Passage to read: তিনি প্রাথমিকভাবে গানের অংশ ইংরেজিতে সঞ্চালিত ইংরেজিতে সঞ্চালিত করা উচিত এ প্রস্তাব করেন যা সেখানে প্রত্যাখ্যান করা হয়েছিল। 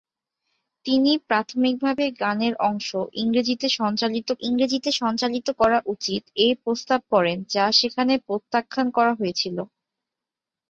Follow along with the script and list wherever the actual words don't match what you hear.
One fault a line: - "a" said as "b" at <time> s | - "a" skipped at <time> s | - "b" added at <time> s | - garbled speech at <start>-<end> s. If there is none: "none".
none